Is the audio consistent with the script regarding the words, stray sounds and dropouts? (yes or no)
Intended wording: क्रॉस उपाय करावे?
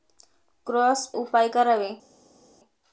yes